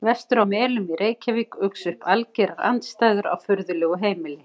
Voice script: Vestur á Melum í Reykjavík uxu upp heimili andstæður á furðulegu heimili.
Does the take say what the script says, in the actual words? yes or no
no